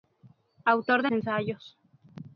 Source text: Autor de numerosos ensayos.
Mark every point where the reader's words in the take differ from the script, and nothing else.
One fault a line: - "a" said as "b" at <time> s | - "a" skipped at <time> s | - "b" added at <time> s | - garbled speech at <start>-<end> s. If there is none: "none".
- "numerosos" skipped at 1.1 s